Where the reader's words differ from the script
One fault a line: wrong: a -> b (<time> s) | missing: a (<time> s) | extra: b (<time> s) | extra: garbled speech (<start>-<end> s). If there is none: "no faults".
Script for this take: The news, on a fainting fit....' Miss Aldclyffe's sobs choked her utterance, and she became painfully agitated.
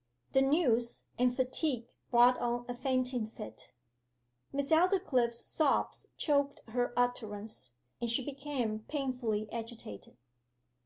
extra: and fatigue brought (1.2 s)